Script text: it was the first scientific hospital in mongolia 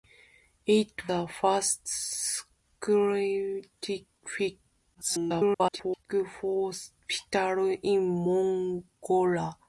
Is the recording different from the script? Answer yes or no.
yes